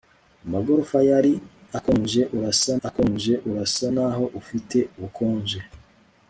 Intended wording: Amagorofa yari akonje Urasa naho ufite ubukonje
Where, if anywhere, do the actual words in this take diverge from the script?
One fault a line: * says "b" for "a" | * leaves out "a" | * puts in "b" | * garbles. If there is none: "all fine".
* puts in "akonje Urasa"